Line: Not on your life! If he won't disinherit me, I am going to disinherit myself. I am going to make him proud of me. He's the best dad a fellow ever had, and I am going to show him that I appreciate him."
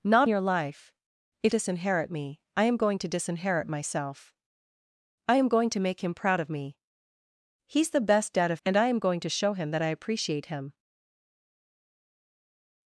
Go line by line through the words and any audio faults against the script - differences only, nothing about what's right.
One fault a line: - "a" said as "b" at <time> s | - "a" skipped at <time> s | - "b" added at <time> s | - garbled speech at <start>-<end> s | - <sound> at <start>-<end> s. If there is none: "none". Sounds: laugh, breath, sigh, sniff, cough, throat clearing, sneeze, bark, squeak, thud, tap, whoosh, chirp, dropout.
- "on" skipped at 0.3 s
- "he won't" skipped at 1.5 s
- "fellow ever had" skipped at 8.6 s